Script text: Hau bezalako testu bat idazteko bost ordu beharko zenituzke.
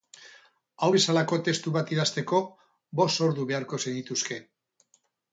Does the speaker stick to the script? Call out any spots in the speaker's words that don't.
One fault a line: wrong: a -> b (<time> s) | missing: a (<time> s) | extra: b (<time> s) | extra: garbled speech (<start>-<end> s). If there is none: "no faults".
no faults